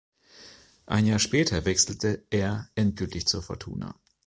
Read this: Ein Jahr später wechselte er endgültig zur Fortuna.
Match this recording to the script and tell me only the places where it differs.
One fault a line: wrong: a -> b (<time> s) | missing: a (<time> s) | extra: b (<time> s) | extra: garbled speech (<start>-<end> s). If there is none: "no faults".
no faults